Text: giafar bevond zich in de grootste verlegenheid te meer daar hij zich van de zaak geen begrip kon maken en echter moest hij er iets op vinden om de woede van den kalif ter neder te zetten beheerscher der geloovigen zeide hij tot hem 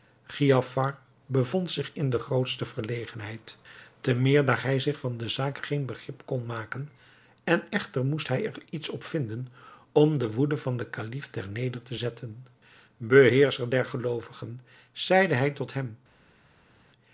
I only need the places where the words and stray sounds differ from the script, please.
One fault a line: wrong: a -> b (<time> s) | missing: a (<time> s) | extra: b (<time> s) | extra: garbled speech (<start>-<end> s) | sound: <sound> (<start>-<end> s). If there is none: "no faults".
no faults